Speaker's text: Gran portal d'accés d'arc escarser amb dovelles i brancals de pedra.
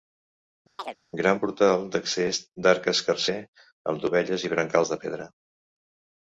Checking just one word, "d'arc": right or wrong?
right